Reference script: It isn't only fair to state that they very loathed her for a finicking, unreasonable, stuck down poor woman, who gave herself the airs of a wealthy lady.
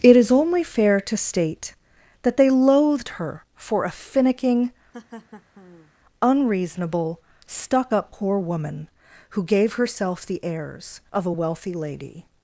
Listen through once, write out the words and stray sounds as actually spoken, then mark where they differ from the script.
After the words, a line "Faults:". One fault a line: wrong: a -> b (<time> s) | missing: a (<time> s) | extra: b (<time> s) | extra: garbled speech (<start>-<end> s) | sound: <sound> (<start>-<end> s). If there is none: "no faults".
It is only fair to state that they loathed her for a finicking, unreasonable, stuck up poor woman, who gave herself the airs of a wealthy lady.
Faults:
wrong: isn't -> is (0.2 s)
missing: very (2.5 s)
sound: laugh (4.9-5.9 s)
wrong: down -> up (7.9 s)